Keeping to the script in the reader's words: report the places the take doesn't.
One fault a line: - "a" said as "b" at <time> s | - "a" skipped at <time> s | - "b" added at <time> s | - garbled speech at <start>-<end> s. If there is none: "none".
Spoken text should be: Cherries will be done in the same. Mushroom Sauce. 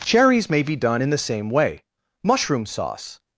- "will" said as "may" at 0.5 s
- "way" added at 1.5 s